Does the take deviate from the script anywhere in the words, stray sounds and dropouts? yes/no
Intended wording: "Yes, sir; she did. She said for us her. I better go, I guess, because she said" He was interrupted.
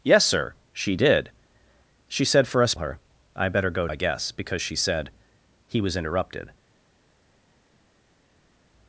no